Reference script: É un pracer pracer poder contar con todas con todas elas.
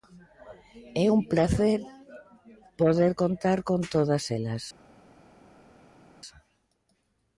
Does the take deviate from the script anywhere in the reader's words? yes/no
yes